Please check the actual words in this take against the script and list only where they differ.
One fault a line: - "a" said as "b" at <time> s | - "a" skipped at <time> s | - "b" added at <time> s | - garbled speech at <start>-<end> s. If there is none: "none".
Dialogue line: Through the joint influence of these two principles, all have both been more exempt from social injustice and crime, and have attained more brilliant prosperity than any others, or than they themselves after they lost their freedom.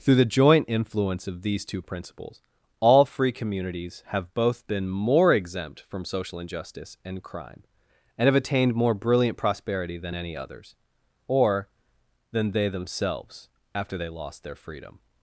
- "free communities" added at 3.0 s